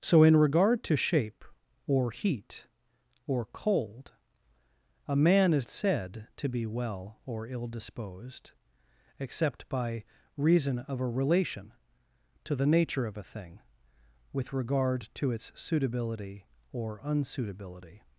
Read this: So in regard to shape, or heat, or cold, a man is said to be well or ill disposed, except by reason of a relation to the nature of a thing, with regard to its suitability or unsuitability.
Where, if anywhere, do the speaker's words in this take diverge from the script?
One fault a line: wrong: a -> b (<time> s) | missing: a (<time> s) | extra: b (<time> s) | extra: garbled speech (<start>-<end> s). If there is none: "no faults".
no faults